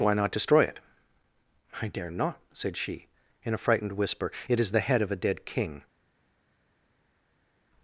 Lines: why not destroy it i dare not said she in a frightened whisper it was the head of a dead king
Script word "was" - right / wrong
wrong